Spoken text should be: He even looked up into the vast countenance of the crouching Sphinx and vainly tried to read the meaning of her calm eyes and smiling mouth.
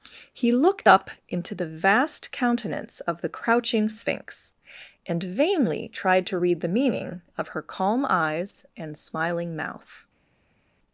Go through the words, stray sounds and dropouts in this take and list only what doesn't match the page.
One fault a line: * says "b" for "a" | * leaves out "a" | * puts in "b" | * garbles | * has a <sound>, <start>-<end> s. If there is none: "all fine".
* leaves out "even"